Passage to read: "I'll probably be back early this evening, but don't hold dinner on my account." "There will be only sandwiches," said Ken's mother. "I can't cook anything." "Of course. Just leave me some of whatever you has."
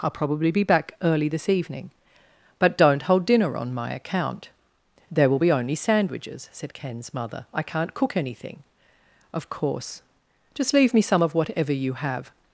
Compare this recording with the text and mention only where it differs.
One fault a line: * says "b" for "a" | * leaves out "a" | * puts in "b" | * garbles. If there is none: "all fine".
* says "have" for "has"